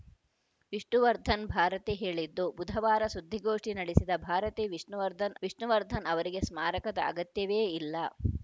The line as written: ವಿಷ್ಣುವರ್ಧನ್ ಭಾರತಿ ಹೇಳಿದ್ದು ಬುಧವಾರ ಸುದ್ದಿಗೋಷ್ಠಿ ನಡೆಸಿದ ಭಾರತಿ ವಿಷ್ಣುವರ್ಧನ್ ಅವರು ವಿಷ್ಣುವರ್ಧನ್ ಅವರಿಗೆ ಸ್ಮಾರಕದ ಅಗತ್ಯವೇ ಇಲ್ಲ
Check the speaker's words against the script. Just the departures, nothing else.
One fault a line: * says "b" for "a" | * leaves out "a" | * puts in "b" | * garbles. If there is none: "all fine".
* leaves out "ಅವರು"